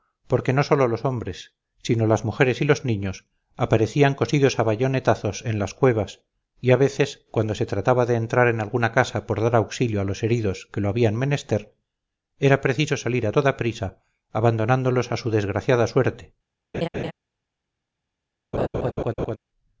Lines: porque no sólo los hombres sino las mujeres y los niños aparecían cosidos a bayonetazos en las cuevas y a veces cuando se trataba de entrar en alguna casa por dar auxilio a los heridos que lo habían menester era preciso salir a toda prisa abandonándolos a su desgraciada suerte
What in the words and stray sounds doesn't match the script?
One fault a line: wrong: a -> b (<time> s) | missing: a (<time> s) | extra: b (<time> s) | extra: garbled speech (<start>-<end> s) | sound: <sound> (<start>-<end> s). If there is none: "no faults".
sound: laugh (16.7-17.1 s)
sound: laugh (18.5-19.4 s)